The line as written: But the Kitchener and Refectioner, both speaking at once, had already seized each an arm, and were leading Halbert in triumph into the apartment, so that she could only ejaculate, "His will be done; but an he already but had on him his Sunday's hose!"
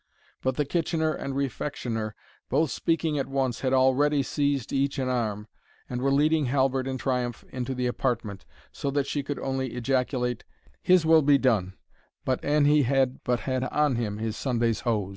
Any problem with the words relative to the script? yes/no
yes